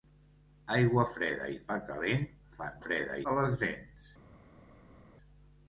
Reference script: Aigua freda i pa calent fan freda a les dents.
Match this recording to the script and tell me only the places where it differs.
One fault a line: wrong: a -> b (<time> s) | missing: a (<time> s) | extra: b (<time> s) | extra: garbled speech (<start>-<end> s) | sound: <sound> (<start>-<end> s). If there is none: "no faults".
no faults